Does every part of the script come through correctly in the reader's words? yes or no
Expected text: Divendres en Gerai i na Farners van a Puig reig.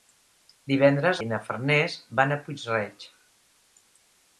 no